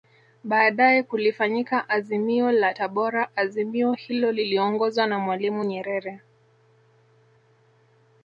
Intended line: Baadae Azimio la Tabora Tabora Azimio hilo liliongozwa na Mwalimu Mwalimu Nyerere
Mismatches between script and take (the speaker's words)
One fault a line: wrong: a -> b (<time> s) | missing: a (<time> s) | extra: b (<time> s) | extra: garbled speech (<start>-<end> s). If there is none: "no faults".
extra: kulifanyika (1.0 s)
missing: Tabora (3.4 s)
missing: Mwalimu (5.7 s)